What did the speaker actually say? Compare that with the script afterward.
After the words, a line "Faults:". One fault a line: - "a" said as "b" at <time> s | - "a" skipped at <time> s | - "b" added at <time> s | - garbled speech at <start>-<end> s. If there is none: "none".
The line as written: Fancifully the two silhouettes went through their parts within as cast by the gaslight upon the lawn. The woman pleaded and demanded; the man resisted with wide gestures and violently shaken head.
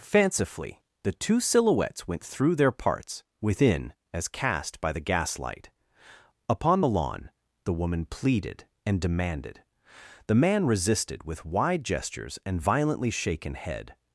Fancifully the two silhouettes went through their parts within as cast by the gaslight upon the lawn. The woman pleaded and demanded; the man resisted with wide gestures and violently shaken head.
Faults:
none